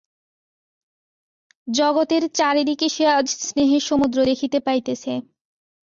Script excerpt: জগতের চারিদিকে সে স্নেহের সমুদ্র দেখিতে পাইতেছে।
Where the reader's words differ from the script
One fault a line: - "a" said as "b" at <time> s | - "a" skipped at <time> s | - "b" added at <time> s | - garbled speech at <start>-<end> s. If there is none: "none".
- "আজ" added at 3.1 s